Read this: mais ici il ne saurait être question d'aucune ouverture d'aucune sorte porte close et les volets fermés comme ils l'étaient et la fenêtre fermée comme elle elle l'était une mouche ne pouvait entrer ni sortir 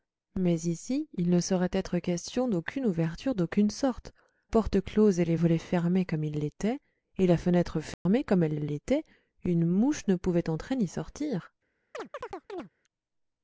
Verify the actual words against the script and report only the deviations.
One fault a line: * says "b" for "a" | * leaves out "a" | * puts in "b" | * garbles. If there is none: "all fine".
all fine